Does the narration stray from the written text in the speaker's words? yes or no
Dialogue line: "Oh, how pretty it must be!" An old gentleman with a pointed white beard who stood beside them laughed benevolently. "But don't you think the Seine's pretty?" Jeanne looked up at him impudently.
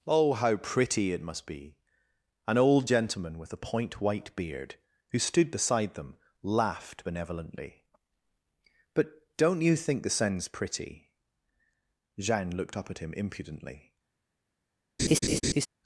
yes